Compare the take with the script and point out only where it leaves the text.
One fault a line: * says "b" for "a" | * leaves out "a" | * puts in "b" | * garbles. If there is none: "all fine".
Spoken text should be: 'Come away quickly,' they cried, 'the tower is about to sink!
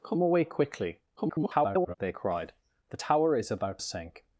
* garbles
* leaves out "to"